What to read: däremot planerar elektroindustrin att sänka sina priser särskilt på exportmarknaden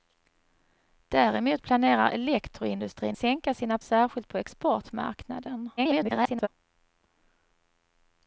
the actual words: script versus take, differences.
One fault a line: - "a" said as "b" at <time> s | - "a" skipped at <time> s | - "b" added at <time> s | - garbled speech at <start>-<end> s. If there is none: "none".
- "att" skipped at 3.2 s
- "priser" skipped at 3.8 s
- garbled speech at 5.8-6.5 s